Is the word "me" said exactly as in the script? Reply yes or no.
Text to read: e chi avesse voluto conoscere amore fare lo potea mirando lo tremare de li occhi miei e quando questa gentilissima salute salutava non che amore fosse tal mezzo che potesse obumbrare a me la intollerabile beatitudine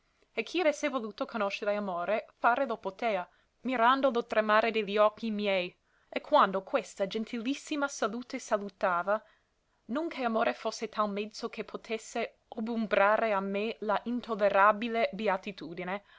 yes